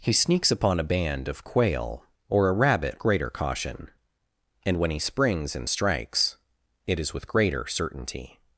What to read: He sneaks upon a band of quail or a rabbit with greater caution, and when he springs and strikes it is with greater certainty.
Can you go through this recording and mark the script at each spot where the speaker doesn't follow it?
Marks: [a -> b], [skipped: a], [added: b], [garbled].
He sneaks upon a band of quail or a rabbit [skipped: with] greater caution, and when he springs and strikes it is with greater certainty.